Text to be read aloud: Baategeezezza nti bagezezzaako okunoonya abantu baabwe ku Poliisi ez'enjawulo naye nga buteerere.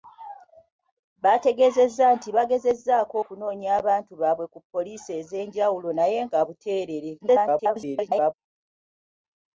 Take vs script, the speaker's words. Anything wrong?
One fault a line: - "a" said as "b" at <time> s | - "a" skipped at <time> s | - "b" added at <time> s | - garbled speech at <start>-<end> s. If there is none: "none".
- garbled speech at 7.2-8.3 s